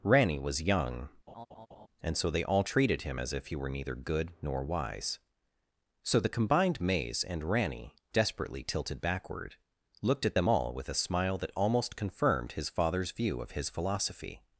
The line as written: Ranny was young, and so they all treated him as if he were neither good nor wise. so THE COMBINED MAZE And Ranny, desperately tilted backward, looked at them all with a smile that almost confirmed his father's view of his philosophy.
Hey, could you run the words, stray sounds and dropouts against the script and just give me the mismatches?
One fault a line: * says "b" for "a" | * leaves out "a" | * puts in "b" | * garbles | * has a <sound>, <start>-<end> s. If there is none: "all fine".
* has a laugh, 1.3-1.9 s